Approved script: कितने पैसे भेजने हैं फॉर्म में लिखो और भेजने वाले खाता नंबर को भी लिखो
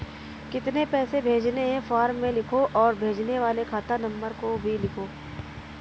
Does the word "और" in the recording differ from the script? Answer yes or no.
no